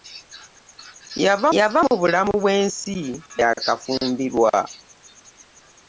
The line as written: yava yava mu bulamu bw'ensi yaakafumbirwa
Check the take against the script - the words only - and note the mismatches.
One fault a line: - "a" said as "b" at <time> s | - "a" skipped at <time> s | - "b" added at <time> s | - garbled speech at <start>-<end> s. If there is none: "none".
none